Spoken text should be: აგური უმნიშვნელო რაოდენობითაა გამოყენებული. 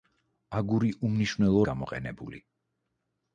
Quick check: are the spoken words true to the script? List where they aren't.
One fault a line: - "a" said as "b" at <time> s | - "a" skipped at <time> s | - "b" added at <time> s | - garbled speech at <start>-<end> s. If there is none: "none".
- "რაოდენობითაა" skipped at 1.6 s